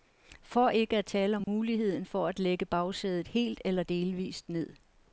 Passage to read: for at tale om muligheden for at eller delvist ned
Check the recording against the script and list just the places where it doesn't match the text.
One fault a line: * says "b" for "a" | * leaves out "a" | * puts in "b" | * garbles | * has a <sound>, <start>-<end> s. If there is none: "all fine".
* puts in "ikke"
* has a dropout, 1.4-1.5 s
* puts in "lægge bagsædet helt"